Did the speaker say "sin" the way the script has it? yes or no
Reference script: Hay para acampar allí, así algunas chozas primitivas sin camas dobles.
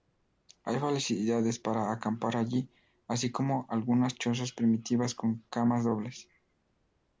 no